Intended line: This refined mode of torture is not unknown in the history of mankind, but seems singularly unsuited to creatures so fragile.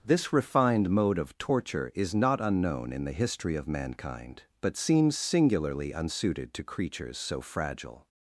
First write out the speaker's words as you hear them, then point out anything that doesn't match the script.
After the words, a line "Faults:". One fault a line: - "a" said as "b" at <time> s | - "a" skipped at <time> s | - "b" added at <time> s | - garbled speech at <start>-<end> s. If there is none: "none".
This refined mode of torture is not unknown in the history of mankind, but seems singularly unsuited to creatures so fragile.
Faults:
none